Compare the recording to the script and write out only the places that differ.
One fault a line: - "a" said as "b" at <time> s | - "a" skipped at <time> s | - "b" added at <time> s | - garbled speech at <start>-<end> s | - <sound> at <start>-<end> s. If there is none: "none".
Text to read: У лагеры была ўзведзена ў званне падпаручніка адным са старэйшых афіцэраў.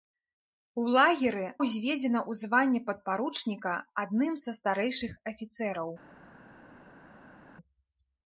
- "была" skipped at 1.4 s